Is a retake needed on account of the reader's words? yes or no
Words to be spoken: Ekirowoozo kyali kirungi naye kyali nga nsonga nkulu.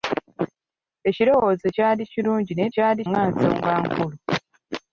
no